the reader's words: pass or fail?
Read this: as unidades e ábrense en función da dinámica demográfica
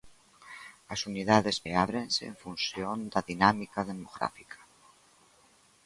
pass